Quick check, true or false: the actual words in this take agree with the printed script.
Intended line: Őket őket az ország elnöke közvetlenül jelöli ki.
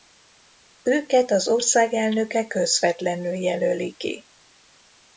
false